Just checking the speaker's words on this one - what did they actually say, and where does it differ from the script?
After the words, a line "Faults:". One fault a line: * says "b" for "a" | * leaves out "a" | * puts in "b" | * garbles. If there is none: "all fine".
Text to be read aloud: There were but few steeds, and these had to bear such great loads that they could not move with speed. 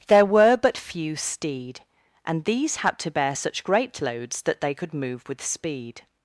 There were but few steed, and these had to bear such great loads that they could move with speed.
Faults:
* says "steed" for "steeds"
* leaves out "not"